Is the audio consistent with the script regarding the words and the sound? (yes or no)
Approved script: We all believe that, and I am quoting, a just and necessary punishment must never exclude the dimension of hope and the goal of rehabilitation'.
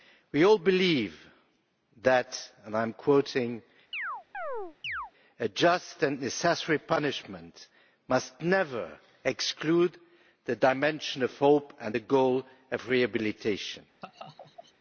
no